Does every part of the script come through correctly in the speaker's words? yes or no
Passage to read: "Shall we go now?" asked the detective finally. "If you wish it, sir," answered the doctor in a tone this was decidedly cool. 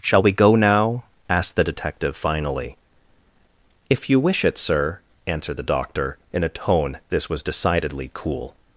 yes